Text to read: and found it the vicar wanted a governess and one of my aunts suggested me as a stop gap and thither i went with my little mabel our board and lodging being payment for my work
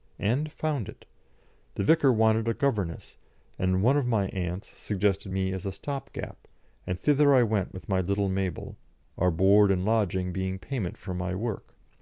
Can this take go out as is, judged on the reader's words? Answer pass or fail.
pass